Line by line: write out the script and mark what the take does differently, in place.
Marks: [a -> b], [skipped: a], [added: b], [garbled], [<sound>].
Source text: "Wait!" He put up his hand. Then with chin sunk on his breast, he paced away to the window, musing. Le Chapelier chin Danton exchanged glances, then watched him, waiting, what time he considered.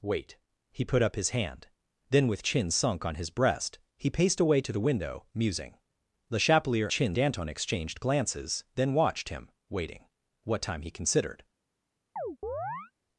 "Wait!" He put up his hand. Then with chin sunk on his breast, he paced away to the window, musing. Le Chapelier chin Danton exchanged glances, then watched him, waiting, what time he considered. [chirp]